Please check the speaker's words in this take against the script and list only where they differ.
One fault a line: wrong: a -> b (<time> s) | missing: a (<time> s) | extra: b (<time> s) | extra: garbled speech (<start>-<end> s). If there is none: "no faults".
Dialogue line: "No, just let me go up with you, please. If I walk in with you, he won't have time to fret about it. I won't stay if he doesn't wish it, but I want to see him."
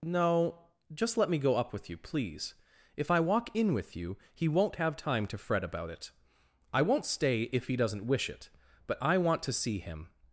no faults